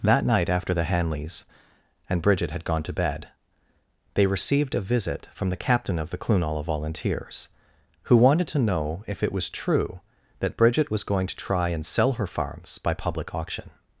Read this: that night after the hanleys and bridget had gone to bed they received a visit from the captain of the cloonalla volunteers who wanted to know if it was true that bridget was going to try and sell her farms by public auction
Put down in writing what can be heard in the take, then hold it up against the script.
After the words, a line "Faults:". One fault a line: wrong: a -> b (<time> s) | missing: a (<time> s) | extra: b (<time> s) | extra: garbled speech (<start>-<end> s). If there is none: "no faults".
that night after the hanleys and bridget had gone to bed they received a visit from the captain of the cloonalla volunteers who wanted to know if it was true that bridget was going to try and sell her farms by public auction
Faults:
no faults